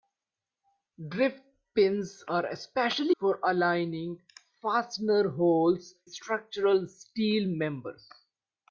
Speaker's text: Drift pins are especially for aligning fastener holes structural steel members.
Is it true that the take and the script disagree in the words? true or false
false